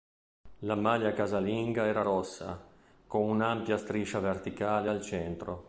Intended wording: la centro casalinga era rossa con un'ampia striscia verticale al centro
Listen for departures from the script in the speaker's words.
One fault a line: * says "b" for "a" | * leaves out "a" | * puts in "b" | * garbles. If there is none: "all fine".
* says "maglia" for "centro"